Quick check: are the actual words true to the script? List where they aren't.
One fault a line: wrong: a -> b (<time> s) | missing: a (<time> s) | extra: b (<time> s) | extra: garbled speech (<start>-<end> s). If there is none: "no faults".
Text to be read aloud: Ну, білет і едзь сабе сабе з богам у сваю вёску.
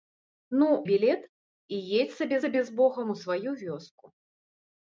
no faults